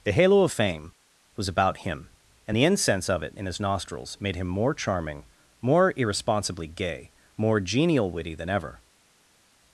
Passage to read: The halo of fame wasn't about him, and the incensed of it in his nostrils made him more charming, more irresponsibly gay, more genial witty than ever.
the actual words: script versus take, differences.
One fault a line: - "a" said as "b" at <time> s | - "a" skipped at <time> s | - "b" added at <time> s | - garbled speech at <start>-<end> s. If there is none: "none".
- "wasn't" said as "was" at 1.3 s
- "incensed" said as "incense" at 2.7 s